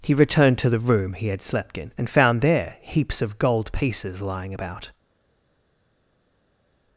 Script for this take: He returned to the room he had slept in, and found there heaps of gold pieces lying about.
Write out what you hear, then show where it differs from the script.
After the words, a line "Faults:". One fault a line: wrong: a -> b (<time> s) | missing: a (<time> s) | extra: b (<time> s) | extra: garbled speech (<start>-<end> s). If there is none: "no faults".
He returned to the room he had slept in, and found there heaps of gold pieces lying about.
Faults:
no faults